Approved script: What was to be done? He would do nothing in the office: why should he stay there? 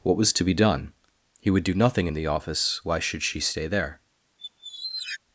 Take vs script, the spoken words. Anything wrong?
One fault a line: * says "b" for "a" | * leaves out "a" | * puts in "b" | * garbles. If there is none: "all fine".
* says "she" for "he"